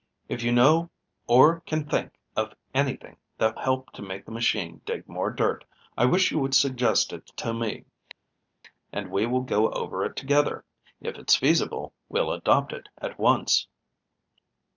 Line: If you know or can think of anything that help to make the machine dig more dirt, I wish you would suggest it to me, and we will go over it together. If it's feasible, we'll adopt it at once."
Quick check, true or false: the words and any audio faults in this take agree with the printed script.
true